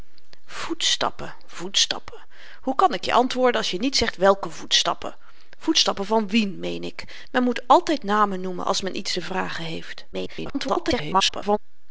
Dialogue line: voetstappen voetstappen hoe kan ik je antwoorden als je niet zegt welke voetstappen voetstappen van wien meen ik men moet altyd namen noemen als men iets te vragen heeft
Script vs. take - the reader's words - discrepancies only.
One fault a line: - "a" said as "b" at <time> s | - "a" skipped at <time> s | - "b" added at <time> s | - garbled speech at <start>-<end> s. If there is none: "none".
- garbled speech at 10.1-11.6 s